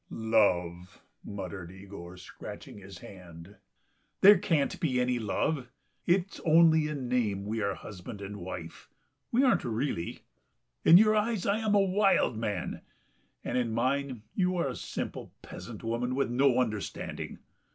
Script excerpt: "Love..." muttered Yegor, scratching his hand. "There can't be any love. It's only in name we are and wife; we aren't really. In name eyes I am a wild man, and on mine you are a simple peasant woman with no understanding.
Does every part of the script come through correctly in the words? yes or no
no